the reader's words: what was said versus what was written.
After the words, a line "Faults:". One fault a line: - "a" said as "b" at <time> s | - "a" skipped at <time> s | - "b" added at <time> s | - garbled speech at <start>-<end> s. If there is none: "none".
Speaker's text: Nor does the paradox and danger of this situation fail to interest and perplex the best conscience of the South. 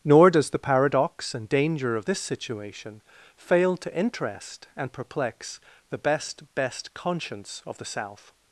Nor does the paradox and danger of this situation fail to interest and perplex the best best conscience of the South.
Faults:
- "best" added at 6.5 s